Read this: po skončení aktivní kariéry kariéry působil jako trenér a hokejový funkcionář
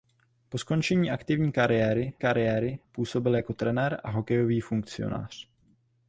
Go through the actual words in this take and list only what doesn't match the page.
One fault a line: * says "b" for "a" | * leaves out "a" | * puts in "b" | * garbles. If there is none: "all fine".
all fine